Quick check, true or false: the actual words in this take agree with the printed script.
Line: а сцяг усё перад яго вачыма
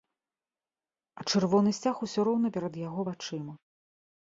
false